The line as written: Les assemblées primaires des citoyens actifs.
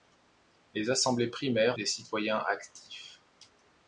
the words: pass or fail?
pass